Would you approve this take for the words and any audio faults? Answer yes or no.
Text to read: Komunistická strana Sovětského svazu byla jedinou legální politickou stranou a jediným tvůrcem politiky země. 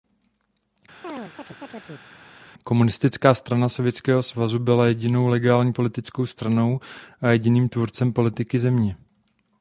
no